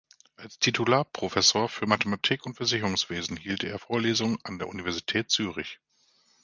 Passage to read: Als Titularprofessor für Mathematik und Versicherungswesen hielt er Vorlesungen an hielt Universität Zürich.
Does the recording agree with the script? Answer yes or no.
no